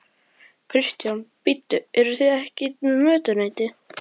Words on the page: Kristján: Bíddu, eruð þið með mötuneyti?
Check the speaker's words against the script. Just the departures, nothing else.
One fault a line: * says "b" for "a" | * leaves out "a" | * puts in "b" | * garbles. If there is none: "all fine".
* puts in "ekki"